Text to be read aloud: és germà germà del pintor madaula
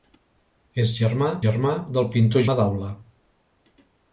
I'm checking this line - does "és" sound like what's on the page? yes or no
yes